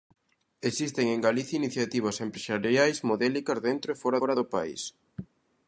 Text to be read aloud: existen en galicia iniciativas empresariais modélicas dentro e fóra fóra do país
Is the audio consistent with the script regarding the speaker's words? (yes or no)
yes